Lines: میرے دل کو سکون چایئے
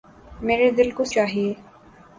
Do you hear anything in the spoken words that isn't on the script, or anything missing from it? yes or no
yes